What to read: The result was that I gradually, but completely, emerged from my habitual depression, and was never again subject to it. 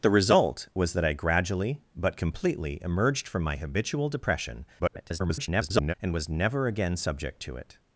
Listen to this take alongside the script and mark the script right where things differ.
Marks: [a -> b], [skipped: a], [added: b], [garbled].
The result was that I gradually, but completely, emerged from my habitual depression, [garbled] and was never again subject to it.